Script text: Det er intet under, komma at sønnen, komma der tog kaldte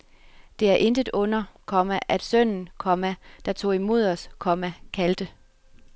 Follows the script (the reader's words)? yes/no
no